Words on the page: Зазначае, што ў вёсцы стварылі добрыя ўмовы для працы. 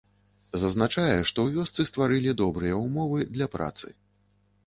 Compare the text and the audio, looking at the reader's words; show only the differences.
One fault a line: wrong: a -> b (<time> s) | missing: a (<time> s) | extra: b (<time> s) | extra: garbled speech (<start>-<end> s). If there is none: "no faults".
no faults